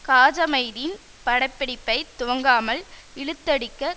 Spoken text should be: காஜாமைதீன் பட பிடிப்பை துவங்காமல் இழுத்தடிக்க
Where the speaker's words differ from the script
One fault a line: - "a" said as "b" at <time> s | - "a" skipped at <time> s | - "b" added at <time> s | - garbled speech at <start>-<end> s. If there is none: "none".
none